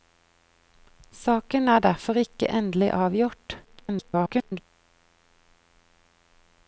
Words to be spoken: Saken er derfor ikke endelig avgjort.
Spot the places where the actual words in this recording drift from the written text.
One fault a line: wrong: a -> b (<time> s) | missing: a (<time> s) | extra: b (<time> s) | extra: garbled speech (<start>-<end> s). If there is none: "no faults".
extra: garbled speech (3.6-4.6 s)